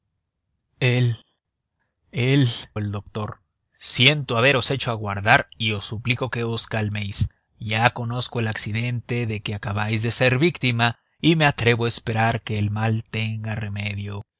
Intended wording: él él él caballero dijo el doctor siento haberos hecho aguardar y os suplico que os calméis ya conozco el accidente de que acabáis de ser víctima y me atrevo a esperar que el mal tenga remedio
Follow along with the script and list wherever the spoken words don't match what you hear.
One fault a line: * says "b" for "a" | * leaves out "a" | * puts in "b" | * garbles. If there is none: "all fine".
* leaves out "él caballero dijo"